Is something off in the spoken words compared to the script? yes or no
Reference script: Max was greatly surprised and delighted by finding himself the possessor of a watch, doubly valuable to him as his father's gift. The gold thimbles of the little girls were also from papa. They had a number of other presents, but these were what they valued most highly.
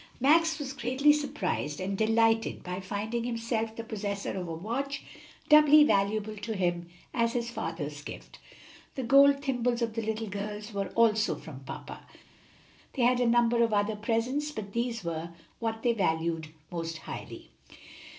no